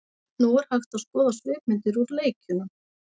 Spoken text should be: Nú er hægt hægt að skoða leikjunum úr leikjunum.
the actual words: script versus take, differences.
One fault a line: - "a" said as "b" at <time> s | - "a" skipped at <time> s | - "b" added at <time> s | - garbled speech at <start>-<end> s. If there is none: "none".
- "hægt" skipped at 1.0 s
- "leikjunum" said as "svipmyndir" at 1.4 s